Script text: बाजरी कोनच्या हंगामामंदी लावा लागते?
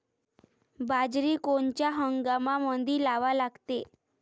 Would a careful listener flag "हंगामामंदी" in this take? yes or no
no